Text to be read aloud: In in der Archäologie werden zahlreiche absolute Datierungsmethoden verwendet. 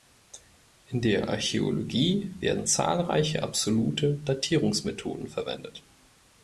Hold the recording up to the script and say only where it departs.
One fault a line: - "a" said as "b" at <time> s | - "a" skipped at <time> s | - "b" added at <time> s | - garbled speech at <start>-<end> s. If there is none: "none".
- "in" skipped at 1.0 s